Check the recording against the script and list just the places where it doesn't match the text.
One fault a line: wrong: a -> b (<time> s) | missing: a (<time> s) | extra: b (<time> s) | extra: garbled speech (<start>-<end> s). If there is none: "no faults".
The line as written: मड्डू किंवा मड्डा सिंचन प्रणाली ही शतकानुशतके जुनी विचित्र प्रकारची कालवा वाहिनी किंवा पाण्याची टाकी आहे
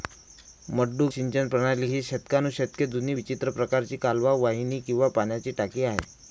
missing: किंवा मड्डा (1.1 s)